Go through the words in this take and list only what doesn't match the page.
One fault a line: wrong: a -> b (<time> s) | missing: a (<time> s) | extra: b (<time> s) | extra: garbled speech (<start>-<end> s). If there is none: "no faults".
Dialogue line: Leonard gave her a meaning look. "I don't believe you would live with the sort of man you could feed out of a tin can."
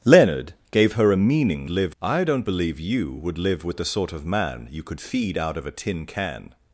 wrong: look -> live (1.7 s)